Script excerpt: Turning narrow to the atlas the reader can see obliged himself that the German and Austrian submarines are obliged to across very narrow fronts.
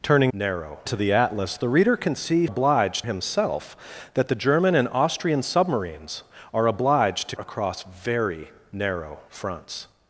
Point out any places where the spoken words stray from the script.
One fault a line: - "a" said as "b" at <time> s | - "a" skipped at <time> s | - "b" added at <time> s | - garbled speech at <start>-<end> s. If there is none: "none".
none